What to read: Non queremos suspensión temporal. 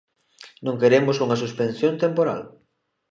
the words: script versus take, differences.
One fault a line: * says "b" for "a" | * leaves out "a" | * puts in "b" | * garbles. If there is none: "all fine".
* puts in "unha"